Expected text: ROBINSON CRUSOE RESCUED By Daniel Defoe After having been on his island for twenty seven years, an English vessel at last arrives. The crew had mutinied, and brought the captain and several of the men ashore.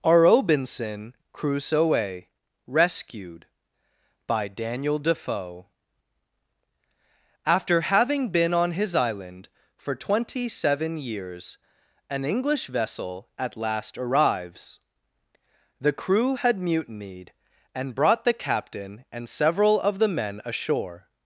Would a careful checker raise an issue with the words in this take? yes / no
no